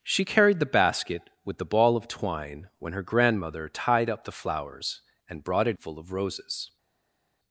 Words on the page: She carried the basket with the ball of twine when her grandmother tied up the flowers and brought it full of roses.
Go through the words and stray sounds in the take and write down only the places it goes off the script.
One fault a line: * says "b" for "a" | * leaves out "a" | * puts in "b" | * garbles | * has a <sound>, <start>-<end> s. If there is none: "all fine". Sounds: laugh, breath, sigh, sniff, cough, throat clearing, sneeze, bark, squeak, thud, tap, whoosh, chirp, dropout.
all fine